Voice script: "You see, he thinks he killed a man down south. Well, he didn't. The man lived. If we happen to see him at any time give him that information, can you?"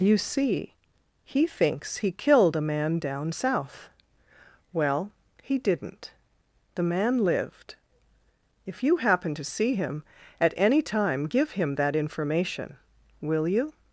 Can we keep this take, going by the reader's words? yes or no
no